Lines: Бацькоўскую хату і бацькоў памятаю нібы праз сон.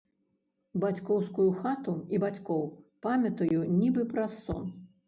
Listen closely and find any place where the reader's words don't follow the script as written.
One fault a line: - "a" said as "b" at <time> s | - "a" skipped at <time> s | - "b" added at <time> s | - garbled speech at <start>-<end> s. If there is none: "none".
none